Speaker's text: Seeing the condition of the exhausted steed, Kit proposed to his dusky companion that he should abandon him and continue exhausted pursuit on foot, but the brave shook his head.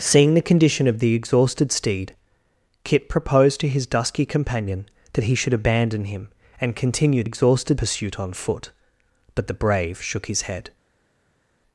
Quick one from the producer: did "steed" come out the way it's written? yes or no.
yes